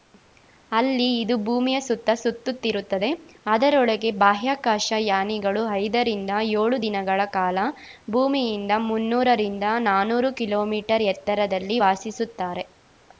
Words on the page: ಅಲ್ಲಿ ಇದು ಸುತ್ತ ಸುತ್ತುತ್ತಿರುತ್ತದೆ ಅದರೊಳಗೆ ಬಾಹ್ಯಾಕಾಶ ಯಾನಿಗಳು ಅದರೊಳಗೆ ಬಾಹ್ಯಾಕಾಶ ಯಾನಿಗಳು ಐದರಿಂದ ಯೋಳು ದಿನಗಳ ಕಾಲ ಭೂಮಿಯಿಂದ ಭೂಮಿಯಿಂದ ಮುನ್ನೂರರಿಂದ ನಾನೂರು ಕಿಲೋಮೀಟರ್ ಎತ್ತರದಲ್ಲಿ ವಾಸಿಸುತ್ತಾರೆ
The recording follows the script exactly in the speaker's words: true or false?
false